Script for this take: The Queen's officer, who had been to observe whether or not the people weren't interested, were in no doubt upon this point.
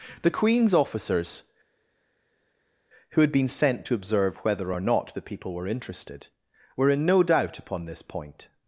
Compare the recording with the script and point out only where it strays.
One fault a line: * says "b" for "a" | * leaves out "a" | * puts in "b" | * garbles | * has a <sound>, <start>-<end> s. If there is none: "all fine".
* says "officers" for "officer"
* puts in "sent"
* says "were" for "weren't"